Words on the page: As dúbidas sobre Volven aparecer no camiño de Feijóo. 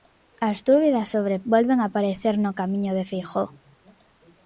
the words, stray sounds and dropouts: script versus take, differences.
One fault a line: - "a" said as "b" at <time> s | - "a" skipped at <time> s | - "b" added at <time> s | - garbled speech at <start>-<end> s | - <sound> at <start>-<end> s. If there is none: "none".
none